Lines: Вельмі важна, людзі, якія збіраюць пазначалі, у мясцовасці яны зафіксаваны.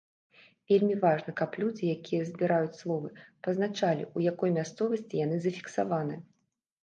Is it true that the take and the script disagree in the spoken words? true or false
true